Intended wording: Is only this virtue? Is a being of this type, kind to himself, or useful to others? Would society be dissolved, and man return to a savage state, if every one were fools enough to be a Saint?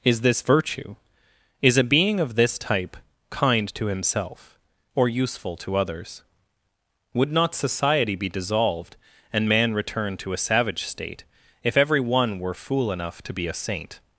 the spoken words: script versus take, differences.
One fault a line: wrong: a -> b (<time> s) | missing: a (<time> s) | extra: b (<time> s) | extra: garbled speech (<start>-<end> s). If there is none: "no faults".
missing: only (0.2 s)
extra: not (7.3 s)
wrong: fools -> fool (12.5 s)